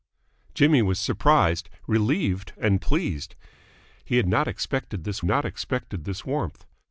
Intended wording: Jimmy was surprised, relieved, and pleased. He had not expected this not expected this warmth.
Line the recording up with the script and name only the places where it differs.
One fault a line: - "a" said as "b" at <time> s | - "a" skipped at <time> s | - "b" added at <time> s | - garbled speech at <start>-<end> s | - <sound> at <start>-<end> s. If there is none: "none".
none